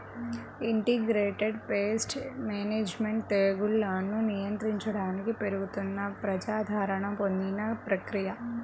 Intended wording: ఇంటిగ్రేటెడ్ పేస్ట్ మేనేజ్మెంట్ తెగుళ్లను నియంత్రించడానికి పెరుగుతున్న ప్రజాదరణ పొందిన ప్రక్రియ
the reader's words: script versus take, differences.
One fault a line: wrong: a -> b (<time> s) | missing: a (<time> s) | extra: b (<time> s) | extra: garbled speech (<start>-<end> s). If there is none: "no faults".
no faults